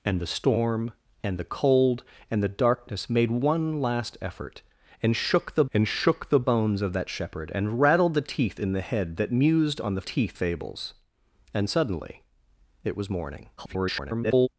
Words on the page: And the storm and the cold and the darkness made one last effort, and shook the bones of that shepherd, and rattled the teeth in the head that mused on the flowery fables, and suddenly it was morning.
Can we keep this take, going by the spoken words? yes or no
no